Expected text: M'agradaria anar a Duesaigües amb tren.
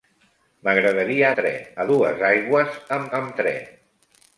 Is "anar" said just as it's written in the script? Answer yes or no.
no